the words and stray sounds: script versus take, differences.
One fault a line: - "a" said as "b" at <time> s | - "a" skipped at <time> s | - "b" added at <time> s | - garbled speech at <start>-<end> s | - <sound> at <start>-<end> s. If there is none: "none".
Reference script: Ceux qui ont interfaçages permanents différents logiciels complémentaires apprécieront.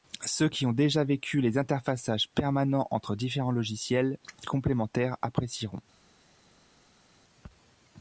- "déjà vécu les" added at 0.7 s
- "entre" added at 2.9 s